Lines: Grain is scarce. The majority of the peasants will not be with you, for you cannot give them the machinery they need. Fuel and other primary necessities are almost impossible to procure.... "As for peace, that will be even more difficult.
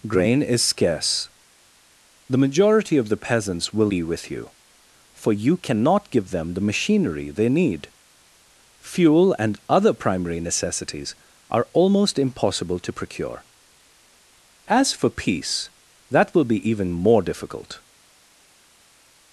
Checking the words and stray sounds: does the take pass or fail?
fail